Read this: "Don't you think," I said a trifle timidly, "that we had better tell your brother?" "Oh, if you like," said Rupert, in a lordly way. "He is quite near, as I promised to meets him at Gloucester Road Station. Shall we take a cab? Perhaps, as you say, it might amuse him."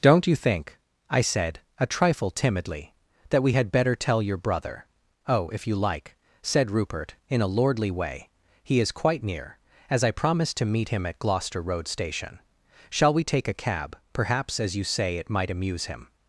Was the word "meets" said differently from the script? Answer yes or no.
yes